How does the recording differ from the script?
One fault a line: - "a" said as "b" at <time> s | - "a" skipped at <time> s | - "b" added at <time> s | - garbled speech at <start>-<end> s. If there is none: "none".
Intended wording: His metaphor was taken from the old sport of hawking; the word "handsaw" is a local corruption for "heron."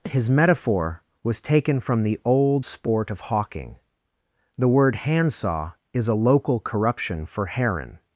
none